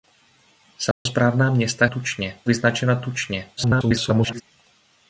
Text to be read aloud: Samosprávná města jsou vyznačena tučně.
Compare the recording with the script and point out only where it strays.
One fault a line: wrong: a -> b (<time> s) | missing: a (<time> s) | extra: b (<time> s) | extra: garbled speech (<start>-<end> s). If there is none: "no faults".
wrong: jsou -> tučně (1.8 s)
extra: garbled speech (3.6-4.4 s)